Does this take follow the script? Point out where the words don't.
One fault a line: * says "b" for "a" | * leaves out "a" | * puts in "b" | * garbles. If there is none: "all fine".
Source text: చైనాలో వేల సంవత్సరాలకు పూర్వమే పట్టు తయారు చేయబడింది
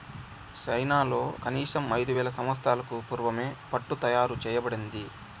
* puts in "కనీసం ఐదు"